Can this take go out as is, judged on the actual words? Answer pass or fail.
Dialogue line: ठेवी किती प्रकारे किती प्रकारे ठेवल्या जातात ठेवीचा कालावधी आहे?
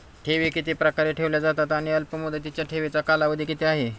fail